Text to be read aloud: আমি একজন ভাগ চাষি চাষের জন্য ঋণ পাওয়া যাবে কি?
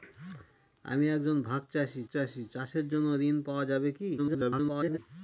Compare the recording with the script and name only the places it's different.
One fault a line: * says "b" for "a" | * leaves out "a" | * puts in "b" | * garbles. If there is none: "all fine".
* puts in "চাষি"
* garbles